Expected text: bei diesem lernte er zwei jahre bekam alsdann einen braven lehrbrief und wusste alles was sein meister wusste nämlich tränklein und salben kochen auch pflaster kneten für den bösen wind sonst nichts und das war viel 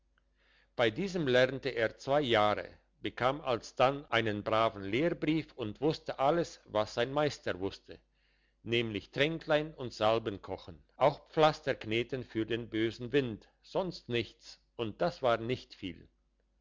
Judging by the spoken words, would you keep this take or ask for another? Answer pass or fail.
fail